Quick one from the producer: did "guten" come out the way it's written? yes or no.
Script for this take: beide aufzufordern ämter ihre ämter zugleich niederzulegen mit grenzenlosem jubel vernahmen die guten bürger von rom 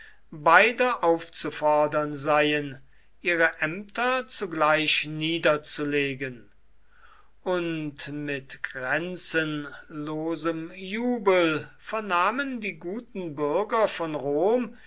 yes